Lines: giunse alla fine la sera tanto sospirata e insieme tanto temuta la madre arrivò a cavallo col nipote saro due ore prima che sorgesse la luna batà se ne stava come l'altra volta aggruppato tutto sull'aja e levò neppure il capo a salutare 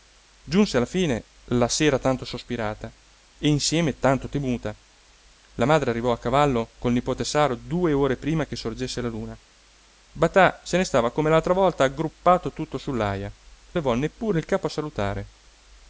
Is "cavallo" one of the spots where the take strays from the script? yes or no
no